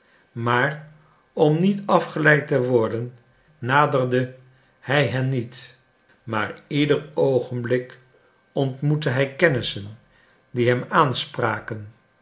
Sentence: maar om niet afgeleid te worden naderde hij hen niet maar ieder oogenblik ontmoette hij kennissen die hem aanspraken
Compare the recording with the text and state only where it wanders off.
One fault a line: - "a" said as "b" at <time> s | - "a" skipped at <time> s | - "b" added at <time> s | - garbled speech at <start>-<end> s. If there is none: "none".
none